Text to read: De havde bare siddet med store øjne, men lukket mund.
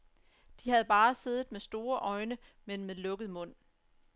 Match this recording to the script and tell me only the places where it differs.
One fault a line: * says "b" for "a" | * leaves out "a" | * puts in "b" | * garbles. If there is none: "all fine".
* puts in "med"